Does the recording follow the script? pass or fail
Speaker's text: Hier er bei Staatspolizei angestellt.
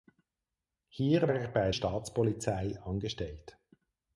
pass